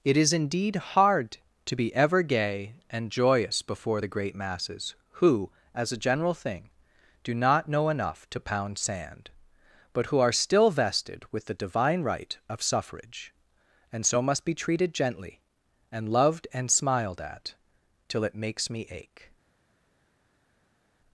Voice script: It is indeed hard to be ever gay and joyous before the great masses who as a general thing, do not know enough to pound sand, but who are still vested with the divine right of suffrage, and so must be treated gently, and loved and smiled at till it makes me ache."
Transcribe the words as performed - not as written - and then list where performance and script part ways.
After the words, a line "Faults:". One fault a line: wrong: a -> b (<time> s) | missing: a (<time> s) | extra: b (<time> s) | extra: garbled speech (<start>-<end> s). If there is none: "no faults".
It is indeed hard to be ever gay and joyous before the great masses who as a general thing, do not know enough to pound sand, but who are still vested with the divine right of suffrage, and so must be treated gently, and loved and smiled at till it makes me ache."
Faults:
no faults